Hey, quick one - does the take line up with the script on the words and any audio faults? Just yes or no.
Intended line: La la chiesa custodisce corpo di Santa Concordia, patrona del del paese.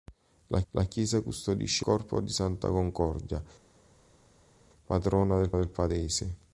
yes